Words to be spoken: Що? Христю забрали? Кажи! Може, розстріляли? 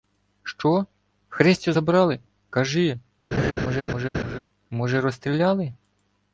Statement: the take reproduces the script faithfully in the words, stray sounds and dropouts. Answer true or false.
false